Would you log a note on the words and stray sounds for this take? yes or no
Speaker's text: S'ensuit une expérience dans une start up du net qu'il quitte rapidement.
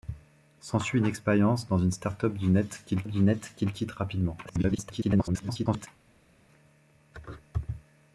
yes